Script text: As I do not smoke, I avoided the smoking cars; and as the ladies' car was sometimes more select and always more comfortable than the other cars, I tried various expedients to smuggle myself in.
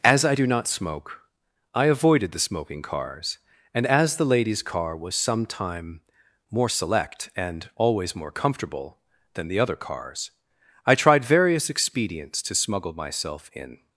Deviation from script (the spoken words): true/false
true